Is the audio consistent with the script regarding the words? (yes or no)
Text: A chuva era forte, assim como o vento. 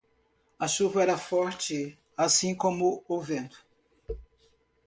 yes